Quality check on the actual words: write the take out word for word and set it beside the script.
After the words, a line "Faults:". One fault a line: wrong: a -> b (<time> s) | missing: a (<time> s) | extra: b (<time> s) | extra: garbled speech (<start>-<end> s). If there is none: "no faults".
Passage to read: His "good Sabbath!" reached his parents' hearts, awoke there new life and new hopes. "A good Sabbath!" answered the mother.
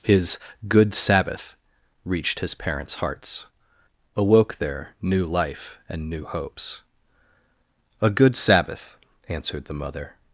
His "good Sabbath!" reached his parents' hearts, awoke there new life and new hopes. "A good Sabbath!" answered the mother.
Faults:
no faults